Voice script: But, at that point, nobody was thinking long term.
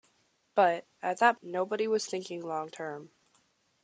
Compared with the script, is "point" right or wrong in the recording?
wrong